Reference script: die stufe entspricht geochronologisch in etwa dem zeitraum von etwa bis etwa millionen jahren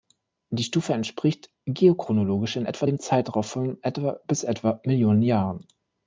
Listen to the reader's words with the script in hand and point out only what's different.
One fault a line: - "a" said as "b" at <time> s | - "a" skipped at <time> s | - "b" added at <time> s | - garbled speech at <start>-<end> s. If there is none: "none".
none